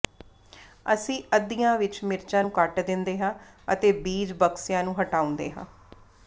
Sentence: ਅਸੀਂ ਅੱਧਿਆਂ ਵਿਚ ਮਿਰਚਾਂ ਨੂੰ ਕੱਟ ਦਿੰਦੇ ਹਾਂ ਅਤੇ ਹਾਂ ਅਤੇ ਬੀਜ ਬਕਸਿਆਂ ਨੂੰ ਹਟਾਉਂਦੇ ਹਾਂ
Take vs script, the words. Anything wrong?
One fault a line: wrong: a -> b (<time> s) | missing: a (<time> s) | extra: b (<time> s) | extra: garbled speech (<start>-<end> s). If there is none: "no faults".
missing: ਹਾਂ ਅਤੇ (3.9 s)